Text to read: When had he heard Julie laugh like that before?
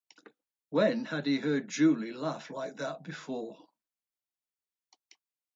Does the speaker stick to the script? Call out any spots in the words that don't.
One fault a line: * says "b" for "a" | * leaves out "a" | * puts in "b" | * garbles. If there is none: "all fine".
all fine